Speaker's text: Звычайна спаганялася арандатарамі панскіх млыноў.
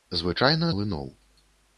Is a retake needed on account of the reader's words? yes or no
yes